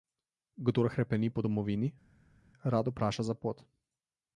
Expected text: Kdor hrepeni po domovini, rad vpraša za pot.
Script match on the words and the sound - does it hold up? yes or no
yes